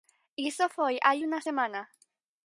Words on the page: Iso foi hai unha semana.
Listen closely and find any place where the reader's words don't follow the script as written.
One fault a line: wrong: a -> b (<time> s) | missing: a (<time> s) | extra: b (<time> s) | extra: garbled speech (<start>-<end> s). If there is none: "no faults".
no faults